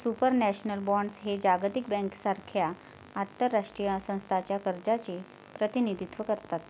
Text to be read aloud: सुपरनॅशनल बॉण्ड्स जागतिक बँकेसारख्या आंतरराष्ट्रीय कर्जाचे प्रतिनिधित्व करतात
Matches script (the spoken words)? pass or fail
fail